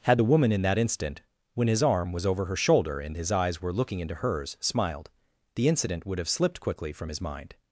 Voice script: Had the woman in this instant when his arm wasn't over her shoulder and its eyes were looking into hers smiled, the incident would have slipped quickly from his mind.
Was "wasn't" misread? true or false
true